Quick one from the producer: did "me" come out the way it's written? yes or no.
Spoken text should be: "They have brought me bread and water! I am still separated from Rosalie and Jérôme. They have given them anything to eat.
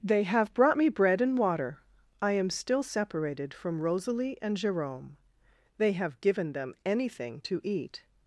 yes